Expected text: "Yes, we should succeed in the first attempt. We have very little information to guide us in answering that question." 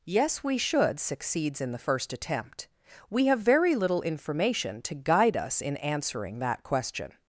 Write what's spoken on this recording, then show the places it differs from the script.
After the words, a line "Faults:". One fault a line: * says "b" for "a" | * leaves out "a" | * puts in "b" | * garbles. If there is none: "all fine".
"Yes, we should succeeds in the first attempt. We have very little information to guide us in answering that question."
Faults:
* says "succeeds" for "succeed"